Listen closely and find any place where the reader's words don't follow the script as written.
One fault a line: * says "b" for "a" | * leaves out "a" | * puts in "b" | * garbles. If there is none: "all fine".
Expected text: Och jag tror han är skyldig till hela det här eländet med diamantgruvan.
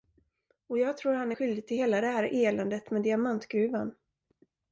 all fine